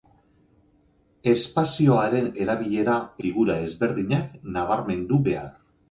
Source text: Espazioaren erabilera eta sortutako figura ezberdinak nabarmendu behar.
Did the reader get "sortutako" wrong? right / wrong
wrong